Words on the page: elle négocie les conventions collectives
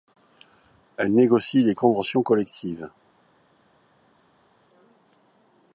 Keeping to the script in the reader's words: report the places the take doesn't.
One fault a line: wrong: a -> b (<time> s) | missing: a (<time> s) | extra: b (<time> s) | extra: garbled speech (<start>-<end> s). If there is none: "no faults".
no faults